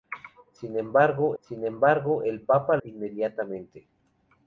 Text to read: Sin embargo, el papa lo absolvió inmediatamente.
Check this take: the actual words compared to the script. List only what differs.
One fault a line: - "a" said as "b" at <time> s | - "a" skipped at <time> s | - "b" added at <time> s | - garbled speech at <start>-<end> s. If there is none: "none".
- "sin embargo" added at 1.4 s
- "lo absolvió" skipped at 2.8 s